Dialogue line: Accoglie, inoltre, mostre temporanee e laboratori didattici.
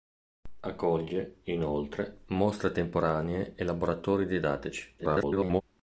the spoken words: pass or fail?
fail